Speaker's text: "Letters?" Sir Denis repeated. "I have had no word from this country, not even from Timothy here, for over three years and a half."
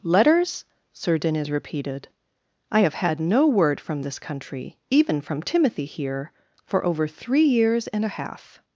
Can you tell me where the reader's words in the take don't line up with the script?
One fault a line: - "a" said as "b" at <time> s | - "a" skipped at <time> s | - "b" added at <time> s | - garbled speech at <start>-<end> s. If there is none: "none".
- "not" skipped at 4.8 s